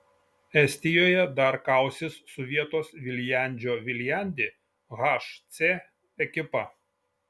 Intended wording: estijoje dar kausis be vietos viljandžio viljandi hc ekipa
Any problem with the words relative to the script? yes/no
yes